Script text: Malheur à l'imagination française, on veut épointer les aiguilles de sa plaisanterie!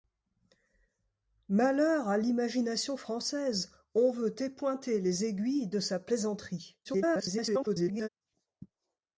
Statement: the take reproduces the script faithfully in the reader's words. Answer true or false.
false